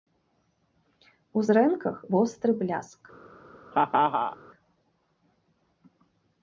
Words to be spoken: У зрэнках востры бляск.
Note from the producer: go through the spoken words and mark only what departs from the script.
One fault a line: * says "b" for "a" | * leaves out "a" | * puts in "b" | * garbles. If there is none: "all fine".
all fine